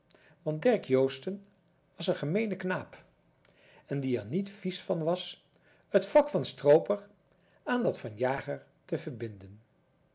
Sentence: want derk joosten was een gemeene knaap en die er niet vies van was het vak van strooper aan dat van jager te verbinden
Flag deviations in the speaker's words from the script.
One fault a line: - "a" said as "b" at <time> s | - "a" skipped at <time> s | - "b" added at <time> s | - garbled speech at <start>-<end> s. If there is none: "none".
none